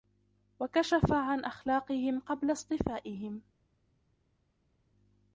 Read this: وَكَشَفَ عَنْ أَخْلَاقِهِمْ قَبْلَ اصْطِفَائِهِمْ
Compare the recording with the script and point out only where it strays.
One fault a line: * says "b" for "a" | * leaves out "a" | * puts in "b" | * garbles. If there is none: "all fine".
all fine